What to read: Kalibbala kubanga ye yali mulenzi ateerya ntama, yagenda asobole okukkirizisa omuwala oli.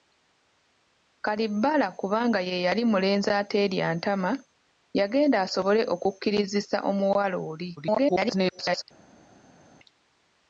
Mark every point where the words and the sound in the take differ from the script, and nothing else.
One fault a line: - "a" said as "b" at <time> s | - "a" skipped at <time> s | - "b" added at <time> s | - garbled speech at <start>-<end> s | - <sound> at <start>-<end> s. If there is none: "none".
- garbled speech at 7.8-8.8 s